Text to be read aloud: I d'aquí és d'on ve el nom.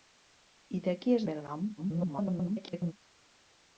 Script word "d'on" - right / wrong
wrong